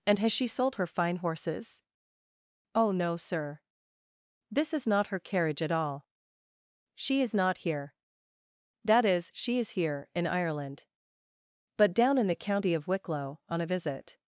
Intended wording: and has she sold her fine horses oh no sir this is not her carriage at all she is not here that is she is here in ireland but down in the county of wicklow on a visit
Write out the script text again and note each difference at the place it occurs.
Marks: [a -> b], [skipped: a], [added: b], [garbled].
and has she sold her fine horses oh no sir this is not her carriage at all she is not here that is she is here in ireland but down in the county of wicklow on a visit